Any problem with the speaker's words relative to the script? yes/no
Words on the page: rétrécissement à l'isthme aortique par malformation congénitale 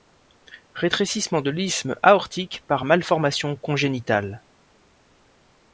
yes